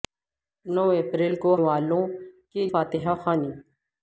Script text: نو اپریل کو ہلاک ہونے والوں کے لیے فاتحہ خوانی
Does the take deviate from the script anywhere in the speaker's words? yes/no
yes